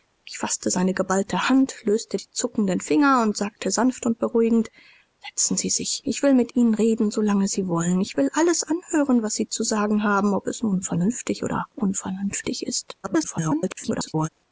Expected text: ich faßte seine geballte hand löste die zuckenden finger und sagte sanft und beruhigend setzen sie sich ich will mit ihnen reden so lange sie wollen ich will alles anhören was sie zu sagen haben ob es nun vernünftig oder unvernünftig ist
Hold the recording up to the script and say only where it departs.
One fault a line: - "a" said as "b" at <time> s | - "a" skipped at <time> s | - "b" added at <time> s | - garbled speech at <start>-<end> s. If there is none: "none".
- garbled speech at 13.0-14.3 s